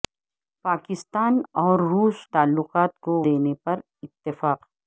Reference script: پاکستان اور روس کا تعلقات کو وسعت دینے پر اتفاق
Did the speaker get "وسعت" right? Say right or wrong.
wrong